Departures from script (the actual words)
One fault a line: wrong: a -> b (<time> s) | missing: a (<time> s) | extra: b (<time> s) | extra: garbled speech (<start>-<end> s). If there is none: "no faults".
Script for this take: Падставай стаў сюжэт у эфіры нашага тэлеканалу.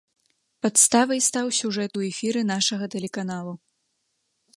no faults